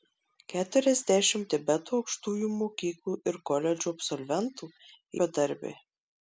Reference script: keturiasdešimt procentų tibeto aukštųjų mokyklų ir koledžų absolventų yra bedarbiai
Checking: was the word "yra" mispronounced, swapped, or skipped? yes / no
yes